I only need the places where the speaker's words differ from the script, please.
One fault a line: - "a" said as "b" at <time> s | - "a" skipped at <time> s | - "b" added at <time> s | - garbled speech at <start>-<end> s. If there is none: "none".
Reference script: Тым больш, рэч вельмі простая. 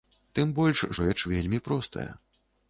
none